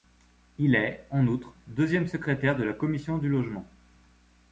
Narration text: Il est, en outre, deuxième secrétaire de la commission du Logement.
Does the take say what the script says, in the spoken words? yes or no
yes